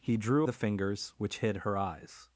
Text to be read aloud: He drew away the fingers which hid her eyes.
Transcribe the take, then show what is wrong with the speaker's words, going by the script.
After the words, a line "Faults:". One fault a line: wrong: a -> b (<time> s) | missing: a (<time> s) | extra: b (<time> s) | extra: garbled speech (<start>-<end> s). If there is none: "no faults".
He drew the fingers which hid her eyes.
Faults:
missing: away (0.5 s)